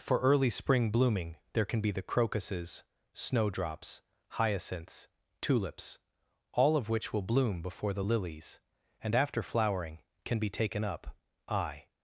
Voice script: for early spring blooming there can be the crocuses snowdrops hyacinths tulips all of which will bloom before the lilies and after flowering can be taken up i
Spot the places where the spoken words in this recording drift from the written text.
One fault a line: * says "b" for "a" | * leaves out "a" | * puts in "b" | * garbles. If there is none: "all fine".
all fine